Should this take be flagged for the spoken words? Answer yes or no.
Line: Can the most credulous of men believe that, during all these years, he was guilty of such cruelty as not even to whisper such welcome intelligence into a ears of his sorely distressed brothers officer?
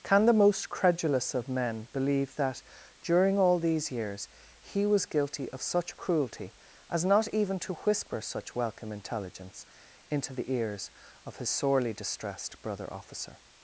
yes